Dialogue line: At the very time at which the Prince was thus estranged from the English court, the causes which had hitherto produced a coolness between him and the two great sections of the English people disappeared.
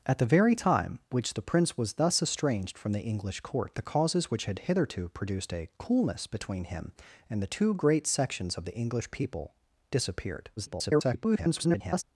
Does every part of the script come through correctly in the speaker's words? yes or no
no